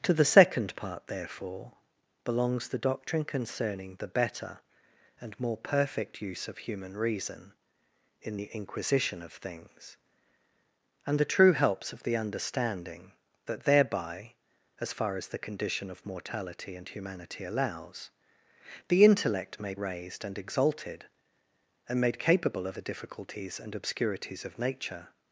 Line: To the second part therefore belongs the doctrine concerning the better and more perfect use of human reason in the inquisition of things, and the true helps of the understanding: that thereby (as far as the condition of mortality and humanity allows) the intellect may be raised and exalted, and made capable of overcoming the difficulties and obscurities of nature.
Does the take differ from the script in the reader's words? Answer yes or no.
yes